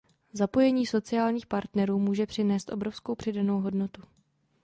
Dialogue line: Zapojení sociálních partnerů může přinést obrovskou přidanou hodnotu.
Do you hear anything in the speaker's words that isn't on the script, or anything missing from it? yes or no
no